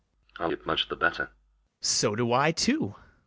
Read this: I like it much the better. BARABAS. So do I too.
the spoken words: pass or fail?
fail